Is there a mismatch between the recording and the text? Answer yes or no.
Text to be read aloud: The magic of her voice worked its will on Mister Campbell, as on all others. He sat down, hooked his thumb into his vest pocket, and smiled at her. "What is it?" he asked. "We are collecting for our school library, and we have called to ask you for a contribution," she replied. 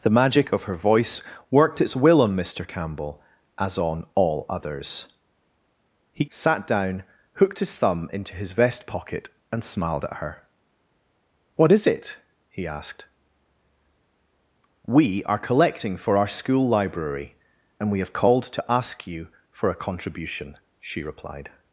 no